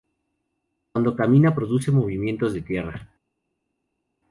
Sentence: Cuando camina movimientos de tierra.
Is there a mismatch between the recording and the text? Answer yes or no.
yes